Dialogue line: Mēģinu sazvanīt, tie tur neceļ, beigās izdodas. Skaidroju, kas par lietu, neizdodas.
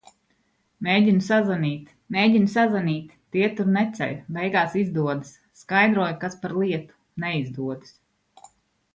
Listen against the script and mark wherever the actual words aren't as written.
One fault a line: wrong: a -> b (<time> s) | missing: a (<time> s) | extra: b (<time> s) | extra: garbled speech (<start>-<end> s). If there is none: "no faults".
extra: mēģinu sazvanīt (2.1 s)